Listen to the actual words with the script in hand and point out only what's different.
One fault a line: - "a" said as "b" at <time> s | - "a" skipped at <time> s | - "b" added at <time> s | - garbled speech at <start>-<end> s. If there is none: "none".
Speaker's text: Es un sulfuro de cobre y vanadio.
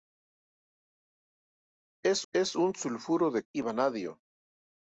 - "es" added at 2.3 s
- "cobre" skipped at 3.4 s